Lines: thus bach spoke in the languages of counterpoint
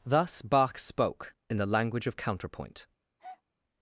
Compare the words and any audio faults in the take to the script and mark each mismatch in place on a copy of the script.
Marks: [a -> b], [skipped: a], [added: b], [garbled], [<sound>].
thus bach spoke in the [languages -> language] of counterpoint [breath]